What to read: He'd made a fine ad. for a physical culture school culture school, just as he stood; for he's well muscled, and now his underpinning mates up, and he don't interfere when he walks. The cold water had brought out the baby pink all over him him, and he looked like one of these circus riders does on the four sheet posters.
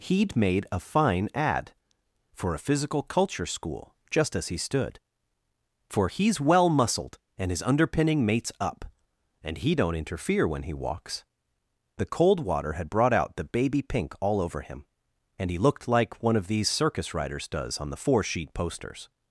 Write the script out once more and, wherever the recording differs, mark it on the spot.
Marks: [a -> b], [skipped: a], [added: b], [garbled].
He'd made a fine ad. for a physical culture school [skipped: culture school,] just as he stood; for he's well muscled, and [skipped: now] his underpinning mates up, and he don't interfere when he walks. The cold water had brought out the baby pink all over him [skipped: him,] and he looked like one of these circus riders does on the four sheet posters.